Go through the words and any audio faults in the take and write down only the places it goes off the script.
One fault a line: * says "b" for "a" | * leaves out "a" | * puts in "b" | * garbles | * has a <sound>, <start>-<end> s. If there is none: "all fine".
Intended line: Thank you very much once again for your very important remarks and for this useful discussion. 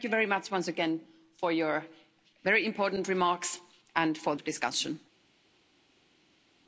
* leaves out "this useful"